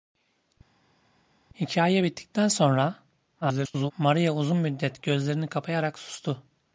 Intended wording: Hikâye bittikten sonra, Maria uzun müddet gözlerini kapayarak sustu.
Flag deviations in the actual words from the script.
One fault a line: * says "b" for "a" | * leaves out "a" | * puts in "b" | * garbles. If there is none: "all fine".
* garbles